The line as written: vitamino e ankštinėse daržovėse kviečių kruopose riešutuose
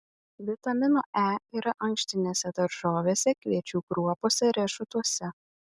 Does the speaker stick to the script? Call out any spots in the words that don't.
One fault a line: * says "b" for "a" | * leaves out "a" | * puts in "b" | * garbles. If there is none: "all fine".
* puts in "yra"